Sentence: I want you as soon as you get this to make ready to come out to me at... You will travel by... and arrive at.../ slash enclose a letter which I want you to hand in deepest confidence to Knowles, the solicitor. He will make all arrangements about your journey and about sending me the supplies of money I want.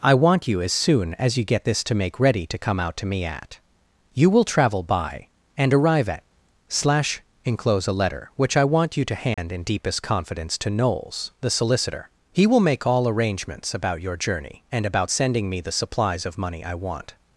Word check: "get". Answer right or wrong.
right